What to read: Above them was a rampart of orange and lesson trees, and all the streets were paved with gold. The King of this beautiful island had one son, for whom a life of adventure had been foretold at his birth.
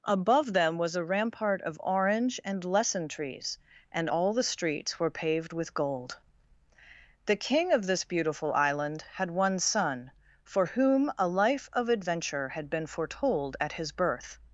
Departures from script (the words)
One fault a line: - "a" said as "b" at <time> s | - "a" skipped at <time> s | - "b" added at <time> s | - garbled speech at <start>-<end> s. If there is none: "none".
none